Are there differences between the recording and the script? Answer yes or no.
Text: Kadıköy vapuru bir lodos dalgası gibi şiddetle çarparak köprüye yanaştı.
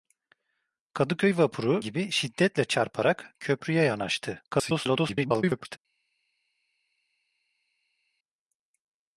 yes